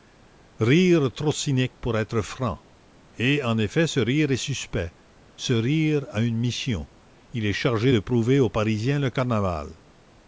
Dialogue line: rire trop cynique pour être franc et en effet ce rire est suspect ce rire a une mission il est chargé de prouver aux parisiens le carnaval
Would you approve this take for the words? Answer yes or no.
yes